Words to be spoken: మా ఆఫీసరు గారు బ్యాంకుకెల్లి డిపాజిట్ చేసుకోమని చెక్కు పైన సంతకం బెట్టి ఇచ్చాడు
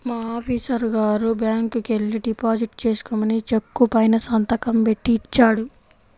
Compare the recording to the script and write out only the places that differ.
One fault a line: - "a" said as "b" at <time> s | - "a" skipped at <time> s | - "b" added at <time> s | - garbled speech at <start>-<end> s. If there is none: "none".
none